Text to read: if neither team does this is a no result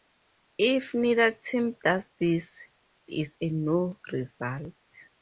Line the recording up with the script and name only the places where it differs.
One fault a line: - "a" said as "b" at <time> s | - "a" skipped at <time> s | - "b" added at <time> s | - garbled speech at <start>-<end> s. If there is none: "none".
none